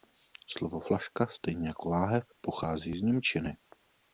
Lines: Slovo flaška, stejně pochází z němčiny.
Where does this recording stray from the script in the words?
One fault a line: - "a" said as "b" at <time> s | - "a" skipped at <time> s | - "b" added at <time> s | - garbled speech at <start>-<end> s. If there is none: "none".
- "jako láhev" added at 1.7 s